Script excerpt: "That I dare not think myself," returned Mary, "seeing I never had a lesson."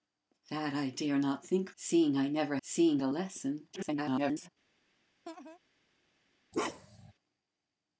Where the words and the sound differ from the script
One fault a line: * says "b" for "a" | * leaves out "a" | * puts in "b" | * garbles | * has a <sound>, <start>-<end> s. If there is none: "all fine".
* leaves out "myself returned Mary"
* says "seeing" for "had"
* garbles
* has a laugh, 5.3-5.6 s
* has a bark, 6.5-7.1 s